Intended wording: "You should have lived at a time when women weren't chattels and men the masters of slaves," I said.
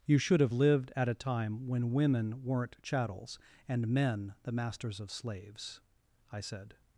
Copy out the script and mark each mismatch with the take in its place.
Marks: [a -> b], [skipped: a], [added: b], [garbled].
"You should have lived at a time when women weren't chattels and men the masters of slaves," I said.